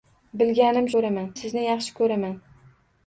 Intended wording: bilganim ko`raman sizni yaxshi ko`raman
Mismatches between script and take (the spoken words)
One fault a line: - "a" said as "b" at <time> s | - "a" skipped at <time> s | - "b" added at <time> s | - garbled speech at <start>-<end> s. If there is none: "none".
none